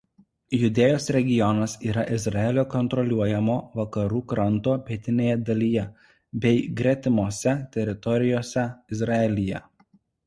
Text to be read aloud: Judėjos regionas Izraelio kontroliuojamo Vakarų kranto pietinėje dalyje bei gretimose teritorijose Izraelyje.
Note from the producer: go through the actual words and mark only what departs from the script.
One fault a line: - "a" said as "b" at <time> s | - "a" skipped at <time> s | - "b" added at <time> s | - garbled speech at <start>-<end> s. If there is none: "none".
- "yra" added at 1.9 s